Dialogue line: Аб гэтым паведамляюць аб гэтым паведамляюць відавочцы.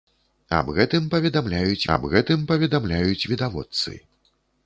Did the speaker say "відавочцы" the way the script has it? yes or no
yes